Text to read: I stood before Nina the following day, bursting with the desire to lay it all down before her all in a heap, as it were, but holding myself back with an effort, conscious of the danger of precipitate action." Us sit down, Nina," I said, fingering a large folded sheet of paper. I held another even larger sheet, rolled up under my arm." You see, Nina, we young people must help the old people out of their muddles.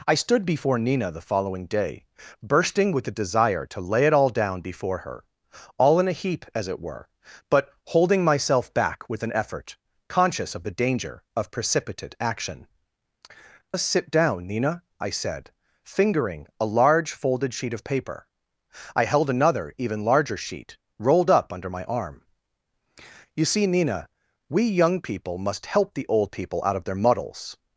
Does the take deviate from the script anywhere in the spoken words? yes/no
no